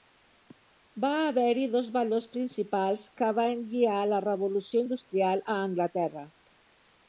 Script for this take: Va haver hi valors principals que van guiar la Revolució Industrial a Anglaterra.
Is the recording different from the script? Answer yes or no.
yes